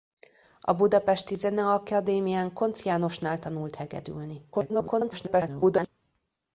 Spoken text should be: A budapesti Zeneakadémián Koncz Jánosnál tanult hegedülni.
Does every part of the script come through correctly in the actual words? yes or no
no